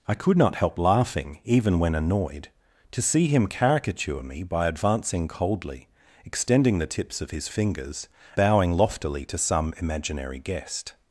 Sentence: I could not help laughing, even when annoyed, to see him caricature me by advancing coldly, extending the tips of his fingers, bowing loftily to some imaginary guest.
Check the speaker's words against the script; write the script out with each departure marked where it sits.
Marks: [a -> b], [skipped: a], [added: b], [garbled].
I could not help laughing, even when annoyed, to see him caricature me by advancing coldly, extending the tips of his fingers, bowing loftily to some imaginary guest.